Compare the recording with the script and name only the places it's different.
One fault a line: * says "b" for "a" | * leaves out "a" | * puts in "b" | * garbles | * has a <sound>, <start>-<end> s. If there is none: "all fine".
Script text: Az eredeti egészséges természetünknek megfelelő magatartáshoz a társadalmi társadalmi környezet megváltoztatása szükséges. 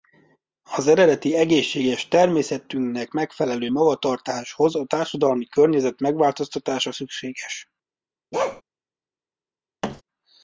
* leaves out "társadalmi"
* has a bark, 8.3-8.6 s
* has a thud, 9.8-10.0 s